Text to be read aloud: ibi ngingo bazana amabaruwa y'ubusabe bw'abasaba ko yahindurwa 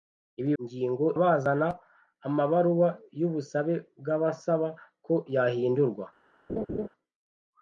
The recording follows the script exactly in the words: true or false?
true